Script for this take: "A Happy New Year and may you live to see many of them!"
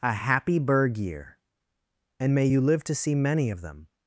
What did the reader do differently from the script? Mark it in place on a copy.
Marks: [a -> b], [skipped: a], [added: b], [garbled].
"A Happy [New -> Berg] Year and may you live to see many of them!"